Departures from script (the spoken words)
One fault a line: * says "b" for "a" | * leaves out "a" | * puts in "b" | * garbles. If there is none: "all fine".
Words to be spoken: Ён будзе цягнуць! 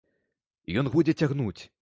all fine